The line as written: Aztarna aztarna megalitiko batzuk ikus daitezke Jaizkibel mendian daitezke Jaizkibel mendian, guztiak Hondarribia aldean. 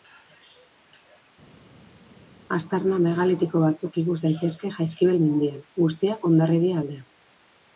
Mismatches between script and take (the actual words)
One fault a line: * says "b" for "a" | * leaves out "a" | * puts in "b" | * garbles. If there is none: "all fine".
* leaves out "aztarna"
* leaves out "daitezke Jaizkibel mendian"